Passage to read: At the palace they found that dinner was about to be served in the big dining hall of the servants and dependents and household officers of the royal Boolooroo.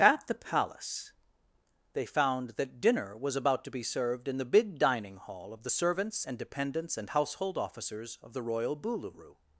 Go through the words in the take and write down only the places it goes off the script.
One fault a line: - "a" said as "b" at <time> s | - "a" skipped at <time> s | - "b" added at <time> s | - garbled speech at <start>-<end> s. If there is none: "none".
none